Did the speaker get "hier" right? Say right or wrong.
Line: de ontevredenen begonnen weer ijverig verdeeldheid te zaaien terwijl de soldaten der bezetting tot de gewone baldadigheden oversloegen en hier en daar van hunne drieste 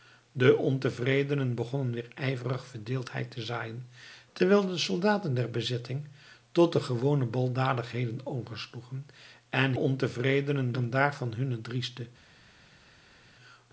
wrong